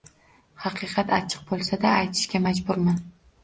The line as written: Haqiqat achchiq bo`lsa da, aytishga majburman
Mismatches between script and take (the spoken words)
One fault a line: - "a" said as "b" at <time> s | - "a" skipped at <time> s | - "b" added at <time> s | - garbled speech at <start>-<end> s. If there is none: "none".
none